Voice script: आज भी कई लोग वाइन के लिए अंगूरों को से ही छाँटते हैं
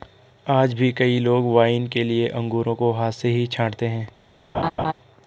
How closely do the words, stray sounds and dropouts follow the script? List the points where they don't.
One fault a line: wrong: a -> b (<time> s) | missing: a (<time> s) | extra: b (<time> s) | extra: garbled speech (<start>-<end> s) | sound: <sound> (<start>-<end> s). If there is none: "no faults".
extra: हाथ (2.9 s)
sound: laugh (4.5-4.9 s)